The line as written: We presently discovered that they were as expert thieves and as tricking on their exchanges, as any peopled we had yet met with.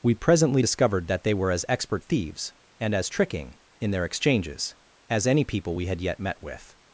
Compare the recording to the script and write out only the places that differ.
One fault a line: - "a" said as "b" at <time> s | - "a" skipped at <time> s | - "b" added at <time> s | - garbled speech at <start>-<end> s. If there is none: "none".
- "on" said as "in" at 3.8 s
- "peopled" said as "people" at 5.4 s